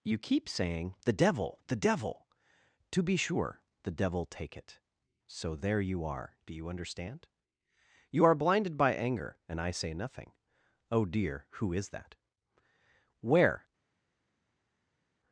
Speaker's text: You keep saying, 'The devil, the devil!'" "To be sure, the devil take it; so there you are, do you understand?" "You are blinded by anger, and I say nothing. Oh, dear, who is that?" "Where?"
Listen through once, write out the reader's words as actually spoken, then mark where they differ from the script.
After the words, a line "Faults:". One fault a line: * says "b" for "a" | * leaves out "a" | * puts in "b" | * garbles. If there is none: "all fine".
You keep saying, 'The devil, the devil!'" "To be sure, the devil take it; so there you are, do you understand?" "You are blinded by anger, and I say nothing. Oh, dear, who is that?" "Where?"
Faults:
all fine